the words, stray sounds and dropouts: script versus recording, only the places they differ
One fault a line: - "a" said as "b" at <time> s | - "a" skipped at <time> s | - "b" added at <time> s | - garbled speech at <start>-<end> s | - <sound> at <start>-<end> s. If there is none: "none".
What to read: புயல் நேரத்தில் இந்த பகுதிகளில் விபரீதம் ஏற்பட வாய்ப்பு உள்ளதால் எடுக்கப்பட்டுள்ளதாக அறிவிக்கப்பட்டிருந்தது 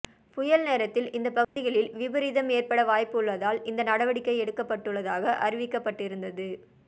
- dropout at 1.4-1.6 s
- "இந்த நடவடிக்கை" added at 3.6 s